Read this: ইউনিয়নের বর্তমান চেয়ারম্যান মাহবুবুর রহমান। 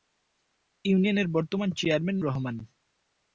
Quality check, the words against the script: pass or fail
fail